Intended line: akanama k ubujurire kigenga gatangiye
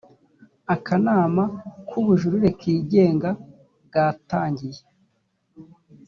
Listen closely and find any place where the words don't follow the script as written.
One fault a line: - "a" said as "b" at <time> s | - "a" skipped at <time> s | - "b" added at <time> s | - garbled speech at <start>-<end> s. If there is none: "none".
none